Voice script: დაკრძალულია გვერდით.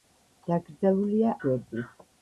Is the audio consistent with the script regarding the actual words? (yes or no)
yes